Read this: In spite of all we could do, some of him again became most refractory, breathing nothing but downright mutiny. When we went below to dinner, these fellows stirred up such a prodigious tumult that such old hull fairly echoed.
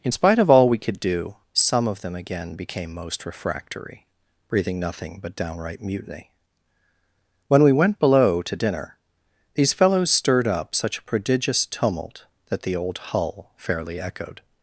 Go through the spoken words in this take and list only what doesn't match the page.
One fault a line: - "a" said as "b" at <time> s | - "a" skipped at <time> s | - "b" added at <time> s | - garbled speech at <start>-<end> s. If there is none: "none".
- "him" said as "them" at 2.0 s
- "such" said as "the" at 12.6 s